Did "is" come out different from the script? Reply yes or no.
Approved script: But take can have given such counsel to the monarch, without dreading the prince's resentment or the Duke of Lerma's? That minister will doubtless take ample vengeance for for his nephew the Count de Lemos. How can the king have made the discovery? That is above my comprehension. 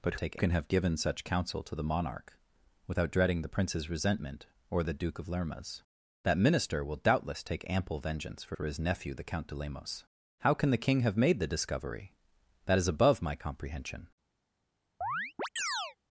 no